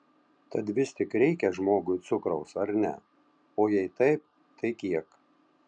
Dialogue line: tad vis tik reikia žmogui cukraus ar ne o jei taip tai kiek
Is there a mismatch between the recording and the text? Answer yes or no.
no